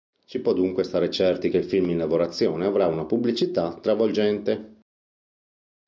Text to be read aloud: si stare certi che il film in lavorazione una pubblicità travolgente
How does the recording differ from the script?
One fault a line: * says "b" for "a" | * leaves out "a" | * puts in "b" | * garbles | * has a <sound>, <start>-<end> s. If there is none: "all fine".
* puts in "può dunque"
* puts in "avrà"